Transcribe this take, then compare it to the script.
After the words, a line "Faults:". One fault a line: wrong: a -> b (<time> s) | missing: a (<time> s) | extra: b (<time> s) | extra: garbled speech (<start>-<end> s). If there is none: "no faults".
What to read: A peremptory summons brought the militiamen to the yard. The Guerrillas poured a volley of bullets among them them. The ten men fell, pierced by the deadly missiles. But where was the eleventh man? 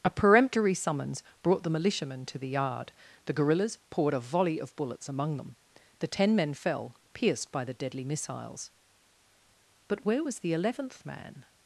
A peremptory summons brought the militiamen to the yard. The Guerrillas poured a volley of bullets among them. The ten men fell, pierced by the deadly missiles. But where was the eleventh man?
Faults:
missing: them (5.6 s)